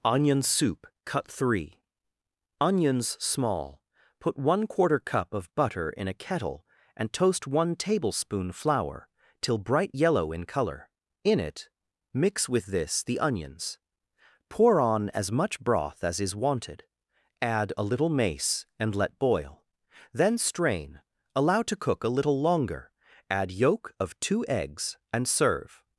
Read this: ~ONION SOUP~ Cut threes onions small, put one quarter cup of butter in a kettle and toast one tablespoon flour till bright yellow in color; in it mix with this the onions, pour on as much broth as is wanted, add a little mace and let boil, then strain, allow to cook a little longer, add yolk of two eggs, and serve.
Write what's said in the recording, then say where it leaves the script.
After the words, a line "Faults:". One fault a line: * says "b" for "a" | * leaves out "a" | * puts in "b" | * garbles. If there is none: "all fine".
~ONION SOUP~ Cut three onions small, put one quarter cup of butter in a kettle and toast one tablespoon flour till bright yellow in color; in it mix with this the onions, pour on as much broth as is wanted, add a little mace and let boil, then strain, allow to cook a little longer, add yolk of two eggs, and serve.
Faults:
* says "three" for "threes"